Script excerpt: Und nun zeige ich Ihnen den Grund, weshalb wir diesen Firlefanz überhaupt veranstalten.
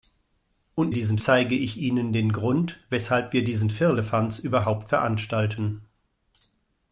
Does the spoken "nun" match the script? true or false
false